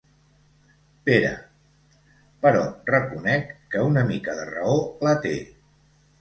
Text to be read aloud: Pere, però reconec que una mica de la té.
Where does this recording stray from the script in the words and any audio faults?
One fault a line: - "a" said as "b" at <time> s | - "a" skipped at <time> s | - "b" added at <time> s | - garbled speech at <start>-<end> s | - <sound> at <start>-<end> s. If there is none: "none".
- "raó" added at 4.5 s